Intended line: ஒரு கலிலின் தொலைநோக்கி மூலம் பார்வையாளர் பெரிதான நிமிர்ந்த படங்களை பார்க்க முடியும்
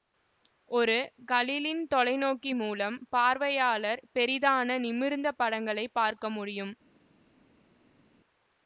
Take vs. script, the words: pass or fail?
pass